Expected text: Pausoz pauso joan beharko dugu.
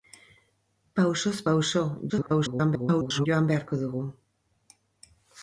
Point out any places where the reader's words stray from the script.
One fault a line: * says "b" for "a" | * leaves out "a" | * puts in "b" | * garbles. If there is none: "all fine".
* garbles